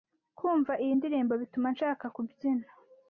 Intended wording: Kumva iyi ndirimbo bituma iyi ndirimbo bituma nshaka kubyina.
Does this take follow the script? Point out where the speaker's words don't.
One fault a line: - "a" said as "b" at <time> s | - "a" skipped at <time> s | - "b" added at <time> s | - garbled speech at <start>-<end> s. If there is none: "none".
- "iyi ndirimbo bituma" skipped at 1.7 s